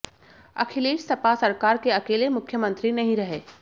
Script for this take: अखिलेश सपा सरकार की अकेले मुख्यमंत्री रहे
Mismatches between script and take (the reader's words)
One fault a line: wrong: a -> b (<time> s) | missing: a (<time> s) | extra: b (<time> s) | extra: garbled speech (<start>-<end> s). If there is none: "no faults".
wrong: की -> के (1.8 s)
extra: नहीं (2.9 s)